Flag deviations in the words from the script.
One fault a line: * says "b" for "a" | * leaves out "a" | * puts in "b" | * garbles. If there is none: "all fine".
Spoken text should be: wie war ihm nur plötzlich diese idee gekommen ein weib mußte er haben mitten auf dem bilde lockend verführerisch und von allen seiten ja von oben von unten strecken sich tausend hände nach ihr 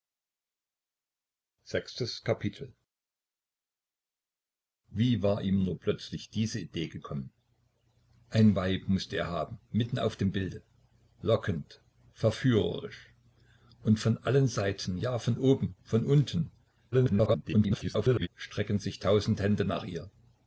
* garbles